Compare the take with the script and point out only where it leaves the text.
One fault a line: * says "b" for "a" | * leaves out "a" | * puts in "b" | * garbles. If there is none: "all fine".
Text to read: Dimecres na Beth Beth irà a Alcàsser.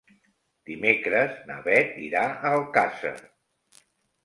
* leaves out "Beth"